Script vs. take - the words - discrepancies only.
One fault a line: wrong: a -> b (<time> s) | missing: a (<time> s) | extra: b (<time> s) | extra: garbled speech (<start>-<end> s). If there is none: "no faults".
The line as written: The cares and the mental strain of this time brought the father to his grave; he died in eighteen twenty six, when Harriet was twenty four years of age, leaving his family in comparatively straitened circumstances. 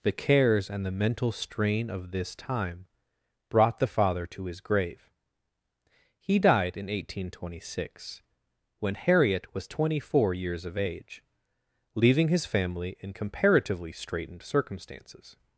no faults